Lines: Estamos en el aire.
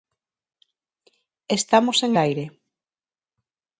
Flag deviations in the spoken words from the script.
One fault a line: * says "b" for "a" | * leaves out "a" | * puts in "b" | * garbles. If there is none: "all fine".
* leaves out "el"